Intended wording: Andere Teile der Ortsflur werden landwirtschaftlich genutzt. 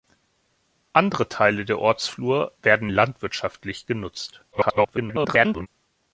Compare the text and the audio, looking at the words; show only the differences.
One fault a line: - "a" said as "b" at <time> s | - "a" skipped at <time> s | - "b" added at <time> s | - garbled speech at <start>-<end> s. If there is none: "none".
- garbled speech at 4.5-5.7 s